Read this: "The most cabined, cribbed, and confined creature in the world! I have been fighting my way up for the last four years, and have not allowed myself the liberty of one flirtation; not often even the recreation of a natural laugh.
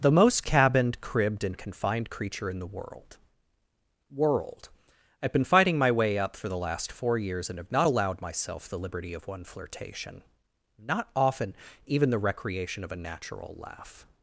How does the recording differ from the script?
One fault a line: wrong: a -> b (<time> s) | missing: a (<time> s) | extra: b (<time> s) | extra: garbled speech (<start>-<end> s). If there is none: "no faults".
extra: world (4.1 s)